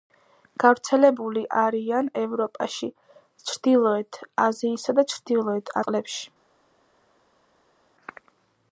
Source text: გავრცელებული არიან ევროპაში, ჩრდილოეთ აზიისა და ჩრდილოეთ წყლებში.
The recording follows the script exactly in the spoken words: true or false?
true